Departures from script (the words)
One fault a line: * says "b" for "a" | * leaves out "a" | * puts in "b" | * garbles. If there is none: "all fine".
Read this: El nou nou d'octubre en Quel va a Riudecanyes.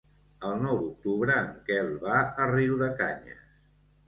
* leaves out "nou"